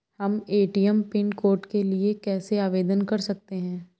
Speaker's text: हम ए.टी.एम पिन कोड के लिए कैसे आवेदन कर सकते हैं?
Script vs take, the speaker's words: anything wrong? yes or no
no